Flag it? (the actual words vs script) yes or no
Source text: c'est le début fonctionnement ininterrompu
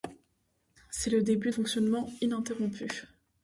no